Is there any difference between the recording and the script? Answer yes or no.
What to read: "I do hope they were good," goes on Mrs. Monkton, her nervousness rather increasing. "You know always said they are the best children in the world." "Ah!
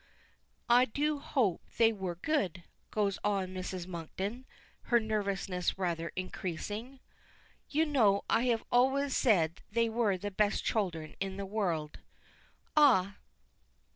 yes